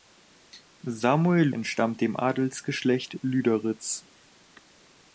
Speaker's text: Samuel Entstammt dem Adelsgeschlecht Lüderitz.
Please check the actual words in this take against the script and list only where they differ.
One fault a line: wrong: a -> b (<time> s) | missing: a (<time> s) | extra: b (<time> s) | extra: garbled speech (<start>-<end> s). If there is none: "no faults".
no faults